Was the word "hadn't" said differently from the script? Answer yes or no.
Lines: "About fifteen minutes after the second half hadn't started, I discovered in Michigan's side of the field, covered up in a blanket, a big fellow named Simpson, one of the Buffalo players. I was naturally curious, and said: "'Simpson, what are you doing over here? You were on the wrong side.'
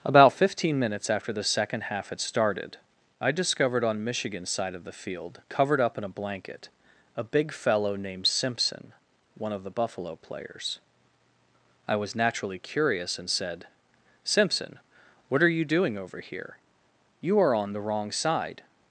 yes